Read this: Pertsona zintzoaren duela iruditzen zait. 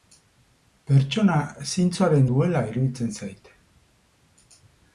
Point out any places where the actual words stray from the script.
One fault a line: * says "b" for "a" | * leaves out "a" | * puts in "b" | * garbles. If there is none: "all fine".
all fine